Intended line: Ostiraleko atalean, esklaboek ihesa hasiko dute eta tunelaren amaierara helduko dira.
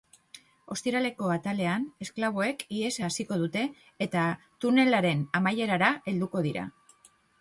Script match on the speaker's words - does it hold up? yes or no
yes